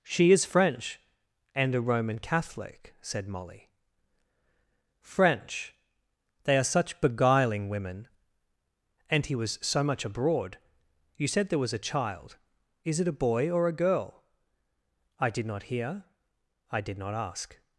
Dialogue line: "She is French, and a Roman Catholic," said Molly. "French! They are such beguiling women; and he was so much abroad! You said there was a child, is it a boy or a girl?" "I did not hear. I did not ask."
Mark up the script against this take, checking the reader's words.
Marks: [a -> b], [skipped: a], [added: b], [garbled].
"She is French, and a Roman Catholic," said Molly. "French! They are such beguiling women; and he was so much abroad! You said there was a child, is it a boy or a girl?" "I did not hear. I did not ask."